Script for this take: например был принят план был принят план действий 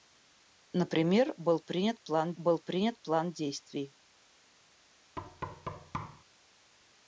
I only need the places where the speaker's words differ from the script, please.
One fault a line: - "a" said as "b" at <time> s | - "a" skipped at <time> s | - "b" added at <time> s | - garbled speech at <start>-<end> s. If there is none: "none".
none